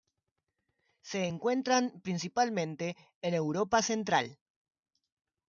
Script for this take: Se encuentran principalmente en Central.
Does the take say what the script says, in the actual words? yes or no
no